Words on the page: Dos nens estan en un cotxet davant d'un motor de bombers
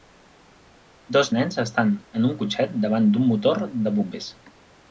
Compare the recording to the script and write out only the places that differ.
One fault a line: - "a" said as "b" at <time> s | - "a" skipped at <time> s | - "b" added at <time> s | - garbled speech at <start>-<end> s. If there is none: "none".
none